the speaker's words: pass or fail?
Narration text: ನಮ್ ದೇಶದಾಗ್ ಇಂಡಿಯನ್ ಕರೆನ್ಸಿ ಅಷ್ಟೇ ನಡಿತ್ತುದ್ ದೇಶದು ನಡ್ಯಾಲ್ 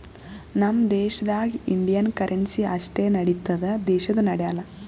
pass